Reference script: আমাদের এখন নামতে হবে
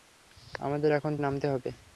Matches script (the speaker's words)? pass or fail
pass